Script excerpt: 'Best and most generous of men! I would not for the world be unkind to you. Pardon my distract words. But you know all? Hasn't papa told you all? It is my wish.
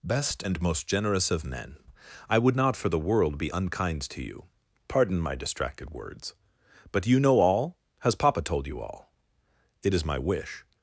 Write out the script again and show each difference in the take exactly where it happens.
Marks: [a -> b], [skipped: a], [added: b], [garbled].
'Best and most generous of men! I would not for the world be unkind to you. Pardon my [distract -> distracted] words. But you know all? [Hasn't -> Has] papa told you all? It is my wish.